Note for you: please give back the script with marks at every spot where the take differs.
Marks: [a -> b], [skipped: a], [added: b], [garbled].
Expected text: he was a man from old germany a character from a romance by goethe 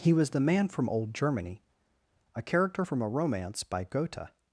he was [a -> the] man from old germany a character from a romance by goethe